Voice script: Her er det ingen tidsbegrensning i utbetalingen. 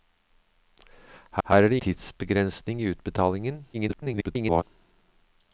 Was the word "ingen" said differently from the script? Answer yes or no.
yes